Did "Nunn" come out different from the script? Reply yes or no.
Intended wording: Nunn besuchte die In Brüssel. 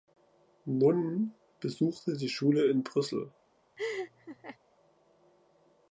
no